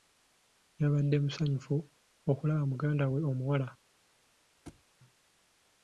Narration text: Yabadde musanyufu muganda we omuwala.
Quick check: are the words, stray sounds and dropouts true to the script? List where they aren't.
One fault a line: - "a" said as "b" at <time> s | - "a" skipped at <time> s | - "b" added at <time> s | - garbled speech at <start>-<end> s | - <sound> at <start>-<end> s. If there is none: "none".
- "okulaba" added at 2.3 s
- thud at 4.7-4.8 s